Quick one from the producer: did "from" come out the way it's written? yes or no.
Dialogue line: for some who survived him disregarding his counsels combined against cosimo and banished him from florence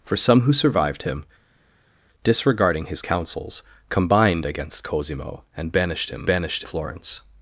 no